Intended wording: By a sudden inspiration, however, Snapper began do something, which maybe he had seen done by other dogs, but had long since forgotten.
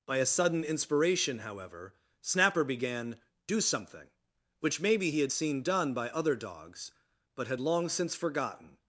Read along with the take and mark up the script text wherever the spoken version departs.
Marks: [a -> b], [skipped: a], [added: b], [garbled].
By a sudden inspiration, however, Snapper began do something, which maybe he had seen done by other dogs, but had long since forgotten.